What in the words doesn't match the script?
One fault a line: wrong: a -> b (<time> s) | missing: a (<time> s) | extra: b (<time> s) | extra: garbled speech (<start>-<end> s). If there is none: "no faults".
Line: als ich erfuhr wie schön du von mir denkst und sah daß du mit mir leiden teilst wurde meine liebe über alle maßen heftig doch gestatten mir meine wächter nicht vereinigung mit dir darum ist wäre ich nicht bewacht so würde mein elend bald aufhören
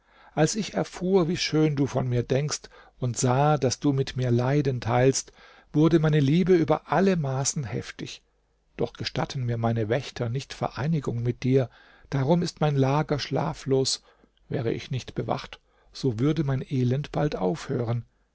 extra: mein lager schlaflos (12.6 s)